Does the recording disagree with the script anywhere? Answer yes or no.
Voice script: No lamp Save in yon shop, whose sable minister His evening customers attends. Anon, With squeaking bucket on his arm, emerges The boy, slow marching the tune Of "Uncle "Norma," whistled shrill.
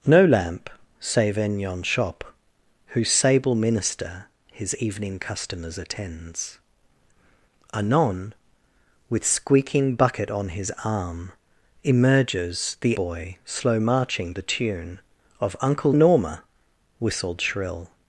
no